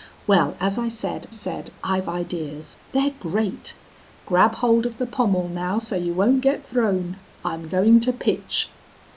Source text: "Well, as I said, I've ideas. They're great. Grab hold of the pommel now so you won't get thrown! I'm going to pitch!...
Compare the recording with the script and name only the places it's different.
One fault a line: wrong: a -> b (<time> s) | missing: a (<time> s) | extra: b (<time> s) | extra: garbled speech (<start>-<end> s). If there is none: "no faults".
extra: said (1.3 s)